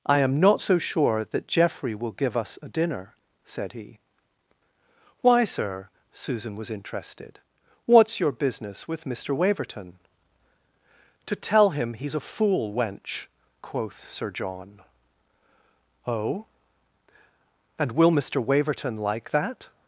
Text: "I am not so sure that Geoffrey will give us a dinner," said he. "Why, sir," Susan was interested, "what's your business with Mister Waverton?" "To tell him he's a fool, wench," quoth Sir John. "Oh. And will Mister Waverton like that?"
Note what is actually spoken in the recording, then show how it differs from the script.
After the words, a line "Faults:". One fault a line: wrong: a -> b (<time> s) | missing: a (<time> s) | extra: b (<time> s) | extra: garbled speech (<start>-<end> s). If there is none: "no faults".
"I am not so sure that Geoffrey will give us a dinner," said he. "Why, sir," Susan was interested, "what's your business with Mister Waverton?" "To tell him he's a fool, wench," quoth Sir John. "Oh. And will Mister Waverton like that?"
Faults:
no faults